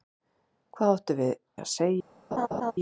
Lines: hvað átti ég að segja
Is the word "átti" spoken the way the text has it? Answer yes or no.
no